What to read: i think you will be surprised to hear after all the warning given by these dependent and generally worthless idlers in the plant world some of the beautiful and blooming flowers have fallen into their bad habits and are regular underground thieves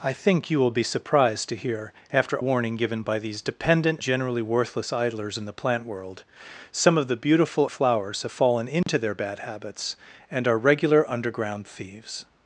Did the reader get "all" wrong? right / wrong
wrong